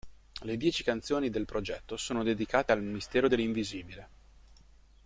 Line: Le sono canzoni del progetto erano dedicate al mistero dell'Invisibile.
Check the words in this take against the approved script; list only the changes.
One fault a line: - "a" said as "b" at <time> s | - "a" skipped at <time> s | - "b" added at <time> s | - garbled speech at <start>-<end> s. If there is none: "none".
- "sono" said as "dieci" at 0.6 s
- "erano" said as "sono" at 1.9 s